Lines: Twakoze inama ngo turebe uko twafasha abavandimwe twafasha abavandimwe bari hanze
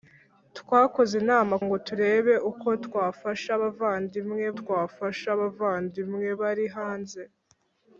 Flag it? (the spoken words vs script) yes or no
no